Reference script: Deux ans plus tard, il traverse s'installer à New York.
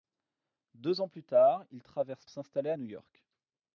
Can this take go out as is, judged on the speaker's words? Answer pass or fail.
pass